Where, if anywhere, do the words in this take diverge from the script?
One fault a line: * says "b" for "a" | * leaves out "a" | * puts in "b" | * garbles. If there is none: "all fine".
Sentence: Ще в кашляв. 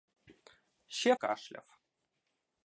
all fine